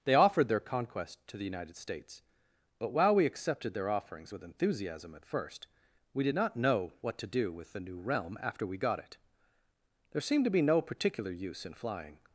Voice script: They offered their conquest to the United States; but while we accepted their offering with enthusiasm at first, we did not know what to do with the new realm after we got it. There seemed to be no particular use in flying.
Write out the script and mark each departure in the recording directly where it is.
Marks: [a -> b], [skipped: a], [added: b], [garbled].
They offered their conquest to the United States; but while we accepted their [offering -> offerings] with enthusiasm at first, we did not know what to do with the new realm after we got it. There seemed to be no particular use in flying.